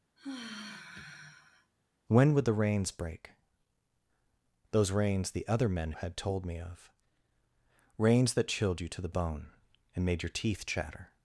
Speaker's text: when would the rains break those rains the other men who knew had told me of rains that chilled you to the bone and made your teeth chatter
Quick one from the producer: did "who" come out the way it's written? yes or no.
no